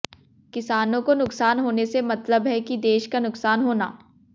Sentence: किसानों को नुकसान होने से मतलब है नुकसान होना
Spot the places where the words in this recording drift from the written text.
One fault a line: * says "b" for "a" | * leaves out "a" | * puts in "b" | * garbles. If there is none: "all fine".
* puts in "कि देश का"